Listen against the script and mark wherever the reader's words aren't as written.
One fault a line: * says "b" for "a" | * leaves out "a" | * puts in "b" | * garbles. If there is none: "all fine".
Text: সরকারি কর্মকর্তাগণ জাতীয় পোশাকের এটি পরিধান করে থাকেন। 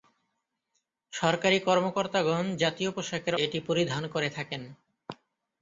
all fine